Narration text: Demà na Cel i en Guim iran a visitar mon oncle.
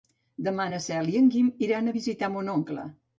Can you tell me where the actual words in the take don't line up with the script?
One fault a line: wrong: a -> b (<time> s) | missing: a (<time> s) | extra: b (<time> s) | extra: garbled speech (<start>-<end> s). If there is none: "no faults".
no faults